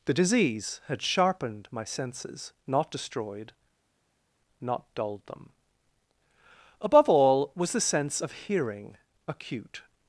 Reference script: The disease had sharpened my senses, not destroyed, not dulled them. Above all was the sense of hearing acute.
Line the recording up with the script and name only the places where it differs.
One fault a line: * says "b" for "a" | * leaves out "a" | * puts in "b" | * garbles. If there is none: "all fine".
all fine